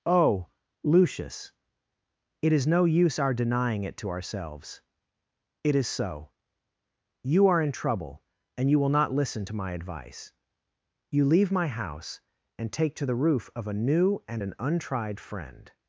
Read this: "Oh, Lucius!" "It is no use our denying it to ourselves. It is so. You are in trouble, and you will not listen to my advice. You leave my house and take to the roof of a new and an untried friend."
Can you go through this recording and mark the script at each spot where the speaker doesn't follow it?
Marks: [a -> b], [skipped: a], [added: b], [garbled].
"Oh, Lucius!" "It is no use our denying it to ourselves. It is so. You are in trouble, and you will not listen to my advice. You leave my house and take to the roof of a new and an untried friend."